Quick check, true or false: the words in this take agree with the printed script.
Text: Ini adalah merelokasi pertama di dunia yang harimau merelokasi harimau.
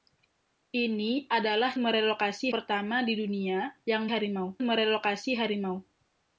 true